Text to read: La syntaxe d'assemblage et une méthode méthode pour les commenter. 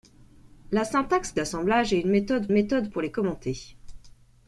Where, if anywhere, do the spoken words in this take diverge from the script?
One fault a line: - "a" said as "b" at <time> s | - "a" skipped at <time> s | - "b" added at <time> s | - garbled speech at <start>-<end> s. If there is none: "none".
none